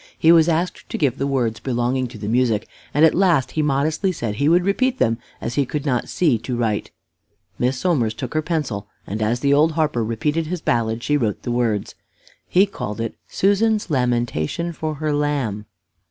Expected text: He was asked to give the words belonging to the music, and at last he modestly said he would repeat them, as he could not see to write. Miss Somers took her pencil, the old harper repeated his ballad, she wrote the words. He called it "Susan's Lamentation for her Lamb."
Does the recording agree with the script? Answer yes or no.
no